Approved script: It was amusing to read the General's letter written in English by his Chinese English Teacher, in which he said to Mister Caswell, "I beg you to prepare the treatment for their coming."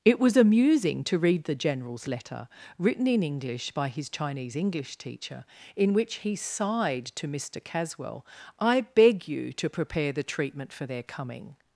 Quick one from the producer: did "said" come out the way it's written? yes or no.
no